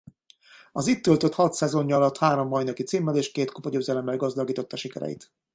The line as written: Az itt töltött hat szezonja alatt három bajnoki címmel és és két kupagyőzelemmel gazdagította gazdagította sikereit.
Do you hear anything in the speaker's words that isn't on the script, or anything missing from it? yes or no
yes